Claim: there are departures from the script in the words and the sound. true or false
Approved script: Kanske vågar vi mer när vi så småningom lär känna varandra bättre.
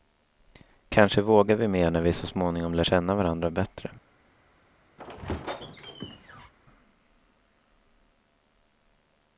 true